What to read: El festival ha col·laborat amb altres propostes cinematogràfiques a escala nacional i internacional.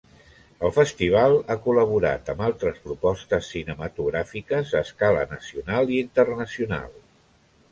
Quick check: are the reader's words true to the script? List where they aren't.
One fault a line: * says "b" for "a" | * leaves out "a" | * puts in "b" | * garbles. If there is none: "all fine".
all fine